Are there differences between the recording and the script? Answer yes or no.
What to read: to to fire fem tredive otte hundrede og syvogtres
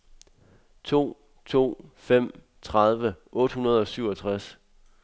yes